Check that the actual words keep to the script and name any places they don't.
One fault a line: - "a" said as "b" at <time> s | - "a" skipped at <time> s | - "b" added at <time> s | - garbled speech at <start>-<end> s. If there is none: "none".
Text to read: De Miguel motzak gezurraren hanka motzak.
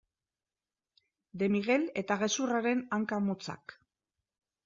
- "motzak" said as "eta" at 2.0 s